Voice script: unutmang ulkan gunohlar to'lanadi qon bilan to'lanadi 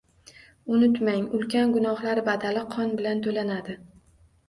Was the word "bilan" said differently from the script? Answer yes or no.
no